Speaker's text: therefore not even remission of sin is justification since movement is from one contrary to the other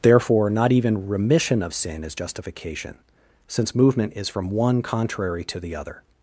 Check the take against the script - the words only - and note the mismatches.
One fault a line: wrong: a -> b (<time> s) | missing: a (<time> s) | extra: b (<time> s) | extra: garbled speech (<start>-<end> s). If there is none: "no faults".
no faults